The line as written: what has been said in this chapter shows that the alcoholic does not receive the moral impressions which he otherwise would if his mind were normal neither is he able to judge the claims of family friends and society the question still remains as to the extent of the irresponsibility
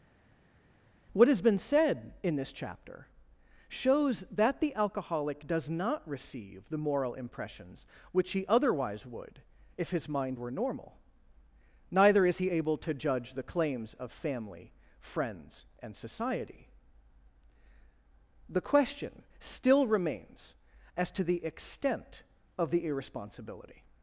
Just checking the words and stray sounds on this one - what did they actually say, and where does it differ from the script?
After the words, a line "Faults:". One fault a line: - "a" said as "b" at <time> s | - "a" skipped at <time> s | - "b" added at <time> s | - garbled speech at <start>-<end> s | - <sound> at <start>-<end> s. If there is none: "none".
what has been said in this chapter shows that the alcoholic does not receive the moral impressions which he otherwise would if his mind were normal neither is he able to judge the claims of family friends and society the question still remains as to the extent of the irresponsibility
Faults:
none